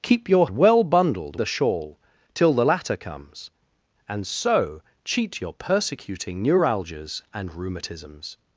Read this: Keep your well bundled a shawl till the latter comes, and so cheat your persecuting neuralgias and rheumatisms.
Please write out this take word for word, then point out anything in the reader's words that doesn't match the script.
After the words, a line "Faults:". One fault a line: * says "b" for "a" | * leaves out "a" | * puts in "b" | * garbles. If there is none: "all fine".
Keep your well bundled a shawl till the latter comes, and so cheat your persecuting neuralgias and rheumatisms.
Faults:
all fine